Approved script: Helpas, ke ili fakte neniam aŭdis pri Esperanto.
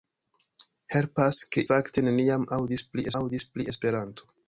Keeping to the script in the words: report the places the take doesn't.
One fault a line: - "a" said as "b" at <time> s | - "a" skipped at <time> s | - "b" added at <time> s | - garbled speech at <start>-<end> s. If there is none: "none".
- "ili" skipped at 1.6 s
- "aŭdis pri" added at 3.2 s